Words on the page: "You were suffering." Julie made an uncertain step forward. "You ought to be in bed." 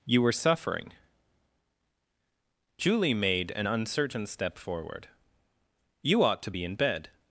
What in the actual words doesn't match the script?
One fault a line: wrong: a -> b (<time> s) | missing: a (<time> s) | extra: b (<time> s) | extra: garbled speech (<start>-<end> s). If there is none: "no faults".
no faults